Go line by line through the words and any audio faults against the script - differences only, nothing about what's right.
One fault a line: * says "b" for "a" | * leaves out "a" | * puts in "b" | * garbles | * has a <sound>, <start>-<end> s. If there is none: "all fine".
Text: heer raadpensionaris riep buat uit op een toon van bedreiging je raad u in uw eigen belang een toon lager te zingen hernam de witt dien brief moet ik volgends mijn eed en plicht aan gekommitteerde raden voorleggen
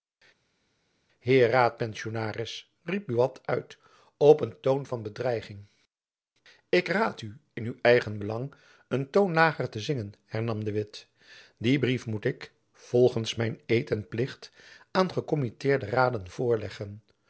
* says "ik" for "je"